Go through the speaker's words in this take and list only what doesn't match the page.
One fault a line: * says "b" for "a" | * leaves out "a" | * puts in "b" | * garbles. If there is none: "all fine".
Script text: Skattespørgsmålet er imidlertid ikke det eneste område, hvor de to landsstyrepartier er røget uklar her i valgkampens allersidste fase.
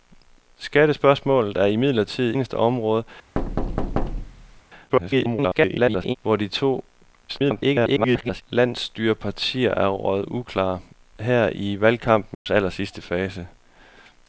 * leaves out "ikke det"
* garbles
* garbles